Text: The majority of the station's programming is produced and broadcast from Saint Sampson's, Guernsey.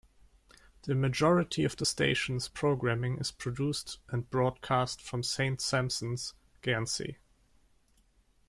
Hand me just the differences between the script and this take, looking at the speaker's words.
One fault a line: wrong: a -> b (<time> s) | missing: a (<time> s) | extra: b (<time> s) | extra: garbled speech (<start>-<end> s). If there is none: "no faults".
no faults